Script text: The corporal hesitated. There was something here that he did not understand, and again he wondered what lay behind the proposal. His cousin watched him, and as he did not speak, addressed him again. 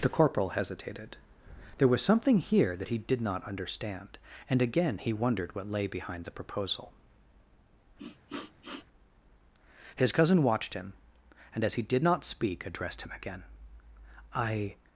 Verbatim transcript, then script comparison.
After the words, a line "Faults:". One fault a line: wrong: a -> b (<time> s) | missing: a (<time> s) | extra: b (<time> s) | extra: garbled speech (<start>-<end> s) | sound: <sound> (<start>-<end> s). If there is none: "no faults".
The corporal hesitated. There was something here that he did not understand, and again he wondered what lay behind the proposal. His cousin watched him, and as he did not speak, addressed him again. "I
Faults:
sound: sniff (8.0-8.9 s)
extra: I (14.3 s)